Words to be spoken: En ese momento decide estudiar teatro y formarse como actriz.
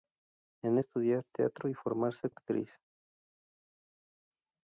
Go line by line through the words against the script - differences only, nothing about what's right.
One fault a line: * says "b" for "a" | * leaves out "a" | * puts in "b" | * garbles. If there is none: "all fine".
* leaves out "ese momento decide"
* leaves out "como"